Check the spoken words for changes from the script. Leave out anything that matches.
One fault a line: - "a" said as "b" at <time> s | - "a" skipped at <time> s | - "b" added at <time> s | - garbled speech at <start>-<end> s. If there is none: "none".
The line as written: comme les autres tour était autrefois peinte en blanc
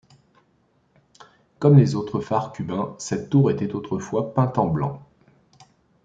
- "phares cubains cette" added at 2.2 s